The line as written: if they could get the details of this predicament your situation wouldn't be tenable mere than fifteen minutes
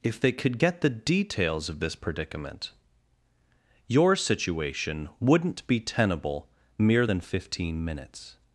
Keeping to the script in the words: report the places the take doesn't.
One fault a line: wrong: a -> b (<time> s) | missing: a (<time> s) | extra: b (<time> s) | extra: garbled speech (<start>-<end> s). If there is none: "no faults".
no faults